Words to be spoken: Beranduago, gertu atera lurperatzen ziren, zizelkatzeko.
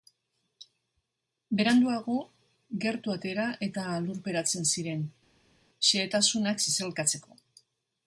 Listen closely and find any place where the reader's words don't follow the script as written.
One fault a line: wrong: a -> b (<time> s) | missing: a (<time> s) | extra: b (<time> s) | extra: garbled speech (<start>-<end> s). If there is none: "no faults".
extra: eta (3.7 s)
extra: xehetasunak (5.9 s)